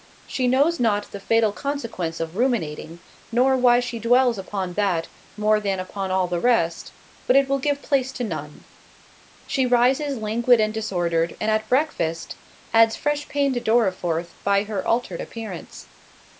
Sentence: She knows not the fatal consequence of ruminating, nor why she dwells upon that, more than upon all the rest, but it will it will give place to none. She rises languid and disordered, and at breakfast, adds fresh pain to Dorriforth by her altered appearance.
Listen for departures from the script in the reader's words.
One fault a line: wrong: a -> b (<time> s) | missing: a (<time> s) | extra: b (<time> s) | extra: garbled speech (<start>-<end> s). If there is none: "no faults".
missing: it will (7.6 s)